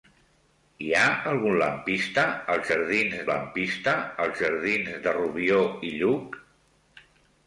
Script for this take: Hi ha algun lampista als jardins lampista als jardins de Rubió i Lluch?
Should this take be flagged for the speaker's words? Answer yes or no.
no